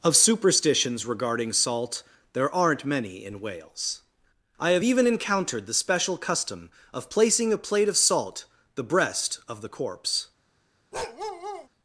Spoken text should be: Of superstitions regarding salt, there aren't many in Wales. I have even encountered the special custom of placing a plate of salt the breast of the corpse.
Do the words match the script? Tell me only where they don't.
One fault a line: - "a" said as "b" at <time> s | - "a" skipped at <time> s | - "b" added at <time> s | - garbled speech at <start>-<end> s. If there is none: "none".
none